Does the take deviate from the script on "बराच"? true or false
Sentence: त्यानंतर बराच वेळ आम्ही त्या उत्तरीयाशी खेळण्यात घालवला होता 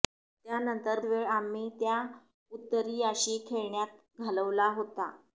true